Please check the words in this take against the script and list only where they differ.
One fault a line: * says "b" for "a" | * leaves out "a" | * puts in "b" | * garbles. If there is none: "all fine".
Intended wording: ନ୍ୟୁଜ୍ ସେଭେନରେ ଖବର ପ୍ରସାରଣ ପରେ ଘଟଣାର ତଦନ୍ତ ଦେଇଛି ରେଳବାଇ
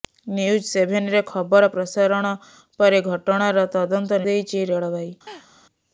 all fine